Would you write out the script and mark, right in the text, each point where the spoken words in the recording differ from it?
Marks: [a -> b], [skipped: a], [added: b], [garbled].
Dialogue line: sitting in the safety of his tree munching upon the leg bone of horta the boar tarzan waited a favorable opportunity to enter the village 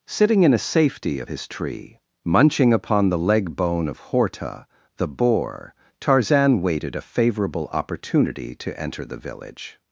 sitting in [the -> a] safety of his tree munching upon the leg bone of horta the boar tarzan waited a favorable opportunity to enter the village